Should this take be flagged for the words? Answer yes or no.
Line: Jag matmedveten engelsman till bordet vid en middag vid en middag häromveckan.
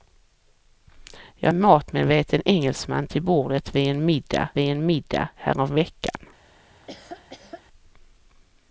no